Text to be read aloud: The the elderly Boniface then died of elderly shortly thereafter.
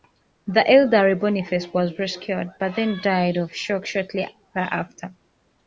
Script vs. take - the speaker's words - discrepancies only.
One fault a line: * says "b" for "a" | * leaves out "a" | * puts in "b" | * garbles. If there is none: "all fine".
* leaves out "the"
* puts in "was rescued but"
* says "shock" for "elderly"